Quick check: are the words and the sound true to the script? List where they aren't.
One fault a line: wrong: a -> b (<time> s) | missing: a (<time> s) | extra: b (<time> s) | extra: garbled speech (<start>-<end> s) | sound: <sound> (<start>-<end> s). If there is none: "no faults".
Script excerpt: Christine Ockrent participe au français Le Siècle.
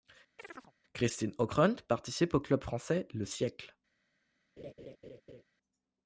sound: chirp (0.4-0.7 s)
extra: club (2.4 s)
sound: laugh (4.6-5.4 s)